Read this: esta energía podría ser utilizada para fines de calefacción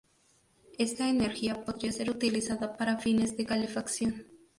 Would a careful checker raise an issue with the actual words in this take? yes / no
no